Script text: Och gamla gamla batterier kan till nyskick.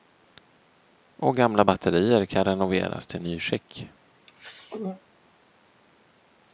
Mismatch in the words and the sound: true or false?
true